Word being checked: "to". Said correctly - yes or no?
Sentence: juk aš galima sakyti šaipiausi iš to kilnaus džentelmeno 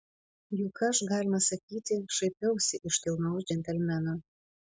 no